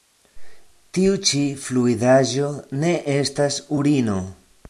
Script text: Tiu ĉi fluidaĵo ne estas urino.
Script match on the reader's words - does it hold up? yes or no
yes